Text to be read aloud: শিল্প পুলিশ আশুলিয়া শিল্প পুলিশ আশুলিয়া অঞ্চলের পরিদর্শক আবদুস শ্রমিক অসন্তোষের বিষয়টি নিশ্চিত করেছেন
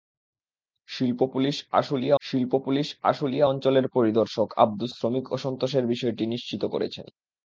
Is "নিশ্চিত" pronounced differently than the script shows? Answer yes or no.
no